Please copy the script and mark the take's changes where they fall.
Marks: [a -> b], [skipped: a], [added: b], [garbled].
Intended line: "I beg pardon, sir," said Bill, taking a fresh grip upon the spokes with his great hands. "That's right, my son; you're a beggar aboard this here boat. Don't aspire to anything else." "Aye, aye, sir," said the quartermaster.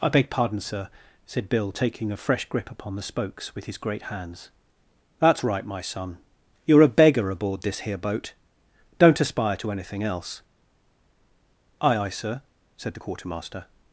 "I beg pardon, sir," said Bill, taking a fresh grip upon the spokes with his great hands. "That's right, my son; you're a beggar aboard this here boat. Don't aspire to anything else." "Aye, aye, sir," said the quartermaster.